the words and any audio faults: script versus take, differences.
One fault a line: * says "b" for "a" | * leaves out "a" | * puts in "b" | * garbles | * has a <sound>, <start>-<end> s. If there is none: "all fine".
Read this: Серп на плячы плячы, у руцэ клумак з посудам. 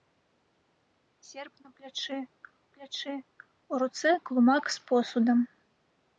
all fine